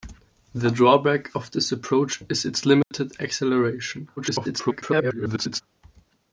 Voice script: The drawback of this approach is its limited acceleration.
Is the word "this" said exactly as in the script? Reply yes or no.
yes